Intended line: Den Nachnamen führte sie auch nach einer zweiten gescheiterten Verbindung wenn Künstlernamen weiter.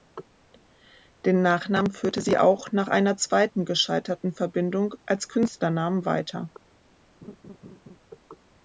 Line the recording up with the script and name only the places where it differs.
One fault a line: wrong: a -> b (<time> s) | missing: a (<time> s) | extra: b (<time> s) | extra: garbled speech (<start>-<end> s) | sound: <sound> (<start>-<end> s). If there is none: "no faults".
wrong: wenn -> als (5.0 s)
sound: laugh (7.2-8.0 s)